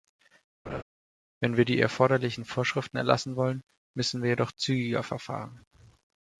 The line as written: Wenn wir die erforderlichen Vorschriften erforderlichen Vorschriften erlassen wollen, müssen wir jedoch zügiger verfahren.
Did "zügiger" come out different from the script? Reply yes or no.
no